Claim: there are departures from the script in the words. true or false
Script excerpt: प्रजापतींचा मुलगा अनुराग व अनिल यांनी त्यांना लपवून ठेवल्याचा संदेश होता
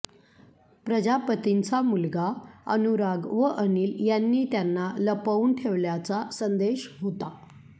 false